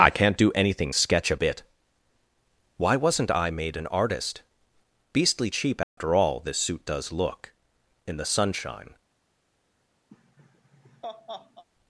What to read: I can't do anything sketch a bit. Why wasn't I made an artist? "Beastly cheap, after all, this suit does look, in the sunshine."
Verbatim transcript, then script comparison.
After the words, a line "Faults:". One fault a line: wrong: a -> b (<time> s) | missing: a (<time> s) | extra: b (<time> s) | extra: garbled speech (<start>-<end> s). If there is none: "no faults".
I can't do anything sketch a bit. Why wasn't I made an artist? "Beastly cheap, after all, this suit does look, in the sunshine."
Faults:
no faults